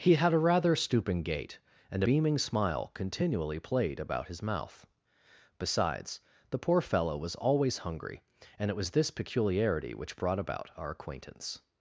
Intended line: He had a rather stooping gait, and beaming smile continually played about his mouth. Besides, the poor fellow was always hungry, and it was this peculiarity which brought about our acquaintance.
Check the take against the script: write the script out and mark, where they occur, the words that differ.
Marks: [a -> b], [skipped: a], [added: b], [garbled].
He had a rather stooping gait, and beaming smile continually played about his mouth. Besides, the poor fellow was always hungry, and it was this peculiarity which brought about our acquaintance.